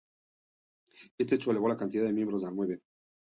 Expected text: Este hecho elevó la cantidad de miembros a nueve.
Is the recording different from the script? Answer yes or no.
no